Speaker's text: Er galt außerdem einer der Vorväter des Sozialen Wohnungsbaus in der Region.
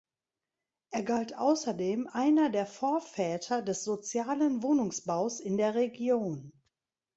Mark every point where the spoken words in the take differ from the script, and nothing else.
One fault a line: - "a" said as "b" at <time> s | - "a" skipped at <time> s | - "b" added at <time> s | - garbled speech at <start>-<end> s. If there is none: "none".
none